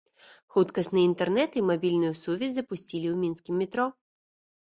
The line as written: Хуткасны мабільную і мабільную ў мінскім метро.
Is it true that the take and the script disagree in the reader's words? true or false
true